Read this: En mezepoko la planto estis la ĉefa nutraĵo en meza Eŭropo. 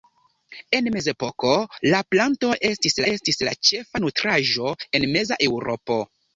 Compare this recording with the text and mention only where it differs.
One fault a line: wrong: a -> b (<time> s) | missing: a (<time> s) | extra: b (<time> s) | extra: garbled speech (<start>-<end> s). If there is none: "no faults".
extra: estis (3.1 s)